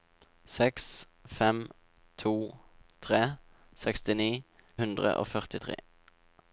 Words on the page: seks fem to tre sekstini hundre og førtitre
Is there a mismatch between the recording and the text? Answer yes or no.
no